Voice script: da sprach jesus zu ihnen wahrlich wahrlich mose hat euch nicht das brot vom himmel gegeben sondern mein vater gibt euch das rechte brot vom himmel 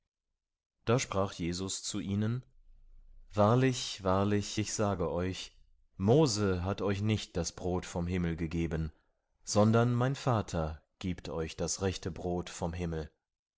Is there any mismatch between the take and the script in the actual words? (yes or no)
yes